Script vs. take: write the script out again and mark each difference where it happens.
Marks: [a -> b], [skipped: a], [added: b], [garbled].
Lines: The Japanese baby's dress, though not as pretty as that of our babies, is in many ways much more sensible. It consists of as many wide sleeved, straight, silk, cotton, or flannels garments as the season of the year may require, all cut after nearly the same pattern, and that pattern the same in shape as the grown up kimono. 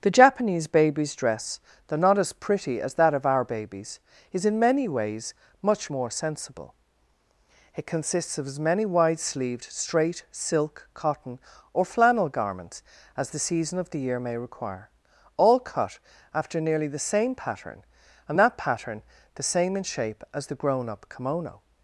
The Japanese baby's dress, though not as pretty as that of our babies, is in many ways much more sensible. It consists of as many wide sleeved, straight, silk, cotton, or [flannels -> flannel] garments as the season of the year may require, all cut after nearly the same pattern, and that pattern the same in shape as the grown up kimono.